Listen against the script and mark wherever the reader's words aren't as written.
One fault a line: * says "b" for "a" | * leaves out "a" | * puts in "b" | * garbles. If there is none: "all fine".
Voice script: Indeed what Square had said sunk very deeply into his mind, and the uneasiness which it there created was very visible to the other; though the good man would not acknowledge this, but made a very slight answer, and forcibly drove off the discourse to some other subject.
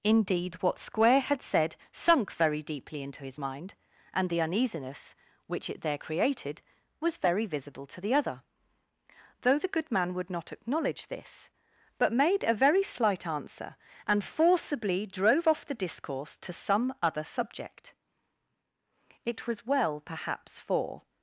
* puts in "It was well perhaps for"